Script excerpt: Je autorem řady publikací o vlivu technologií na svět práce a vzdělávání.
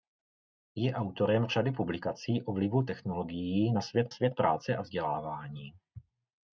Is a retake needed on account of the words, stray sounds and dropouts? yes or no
yes